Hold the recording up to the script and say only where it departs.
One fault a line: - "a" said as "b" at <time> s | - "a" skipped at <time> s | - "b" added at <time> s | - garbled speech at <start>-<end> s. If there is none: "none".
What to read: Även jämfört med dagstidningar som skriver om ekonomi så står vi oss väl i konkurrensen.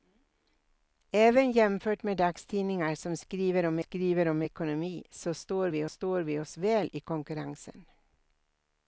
- "skriver om" added at 3.8 s
- "står vi" added at 5.9 s